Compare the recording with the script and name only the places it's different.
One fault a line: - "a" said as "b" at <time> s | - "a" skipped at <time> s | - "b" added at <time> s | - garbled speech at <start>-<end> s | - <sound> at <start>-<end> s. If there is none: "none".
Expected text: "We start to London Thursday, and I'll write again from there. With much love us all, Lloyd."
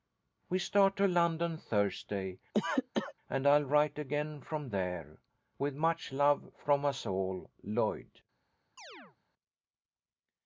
- cough at 2.5-3.1 s
- "from" added at 6.6 s
- chirp at 8.8-9.2 s